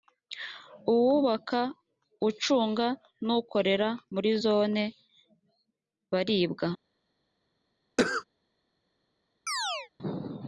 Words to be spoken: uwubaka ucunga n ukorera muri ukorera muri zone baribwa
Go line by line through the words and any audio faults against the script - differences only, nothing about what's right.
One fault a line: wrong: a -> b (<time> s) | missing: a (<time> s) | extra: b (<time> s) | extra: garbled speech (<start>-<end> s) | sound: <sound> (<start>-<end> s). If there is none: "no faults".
missing: ukorera muri (4.3 s)
sound: cough (8.0-8.2 s)
sound: chirp (9.5-9.9 s)